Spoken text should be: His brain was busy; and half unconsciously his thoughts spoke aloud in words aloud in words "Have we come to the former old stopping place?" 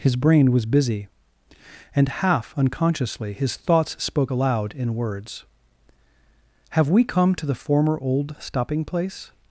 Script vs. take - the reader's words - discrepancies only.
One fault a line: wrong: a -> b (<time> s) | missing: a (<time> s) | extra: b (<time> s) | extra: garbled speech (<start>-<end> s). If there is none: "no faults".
missing: aloud in words (5.4 s)